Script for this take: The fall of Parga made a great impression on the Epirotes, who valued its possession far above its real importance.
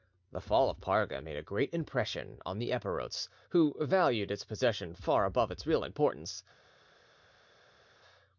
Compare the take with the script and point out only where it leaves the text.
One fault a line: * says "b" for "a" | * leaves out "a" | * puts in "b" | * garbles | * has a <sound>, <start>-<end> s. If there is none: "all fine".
all fine